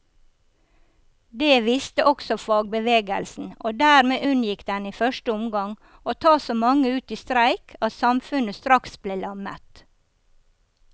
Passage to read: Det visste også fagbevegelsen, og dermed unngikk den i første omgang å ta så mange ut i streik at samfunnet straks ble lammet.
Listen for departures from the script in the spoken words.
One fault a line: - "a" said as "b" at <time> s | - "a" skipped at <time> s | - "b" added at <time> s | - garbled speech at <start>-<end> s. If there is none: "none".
none